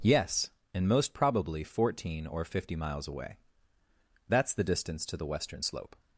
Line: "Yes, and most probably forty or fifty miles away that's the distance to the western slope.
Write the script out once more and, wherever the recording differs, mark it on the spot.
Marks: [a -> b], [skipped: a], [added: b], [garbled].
"Yes, and most probably [forty -> fourteen] or fifty miles away that's the distance to the western slope.